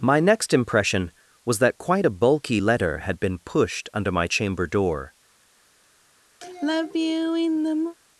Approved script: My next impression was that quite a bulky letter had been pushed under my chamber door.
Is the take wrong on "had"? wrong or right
right